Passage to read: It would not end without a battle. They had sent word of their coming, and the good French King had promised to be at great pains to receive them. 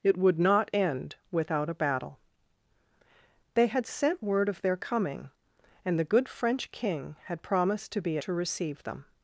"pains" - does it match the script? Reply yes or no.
no